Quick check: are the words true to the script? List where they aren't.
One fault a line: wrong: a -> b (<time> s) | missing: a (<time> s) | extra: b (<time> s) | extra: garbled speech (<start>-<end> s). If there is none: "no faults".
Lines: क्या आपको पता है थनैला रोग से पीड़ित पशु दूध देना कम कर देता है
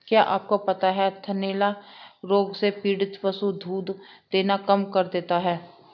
no faults